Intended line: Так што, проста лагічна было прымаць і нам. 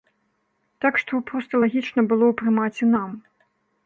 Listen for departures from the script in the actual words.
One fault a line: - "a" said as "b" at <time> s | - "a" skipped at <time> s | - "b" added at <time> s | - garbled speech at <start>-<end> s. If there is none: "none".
none